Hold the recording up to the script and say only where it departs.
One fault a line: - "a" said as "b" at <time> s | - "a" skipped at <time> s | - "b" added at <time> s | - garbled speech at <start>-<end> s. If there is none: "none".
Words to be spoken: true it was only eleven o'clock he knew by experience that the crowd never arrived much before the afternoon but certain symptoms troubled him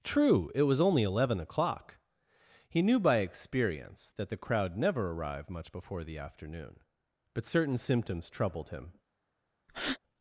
none